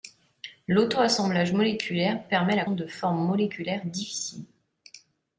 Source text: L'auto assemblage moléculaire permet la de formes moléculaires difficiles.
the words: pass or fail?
pass